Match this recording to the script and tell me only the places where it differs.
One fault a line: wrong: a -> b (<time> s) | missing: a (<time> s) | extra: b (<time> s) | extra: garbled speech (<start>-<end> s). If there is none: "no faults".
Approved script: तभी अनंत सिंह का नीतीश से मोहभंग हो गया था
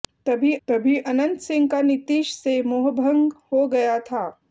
extra: तभी (0.7 s)